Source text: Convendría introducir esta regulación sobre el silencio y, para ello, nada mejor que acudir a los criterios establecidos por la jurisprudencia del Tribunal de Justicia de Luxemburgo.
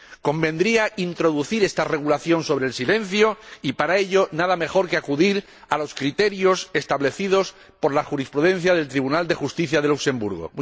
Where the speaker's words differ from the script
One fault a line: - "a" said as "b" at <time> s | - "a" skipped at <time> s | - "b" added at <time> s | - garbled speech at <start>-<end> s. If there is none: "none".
none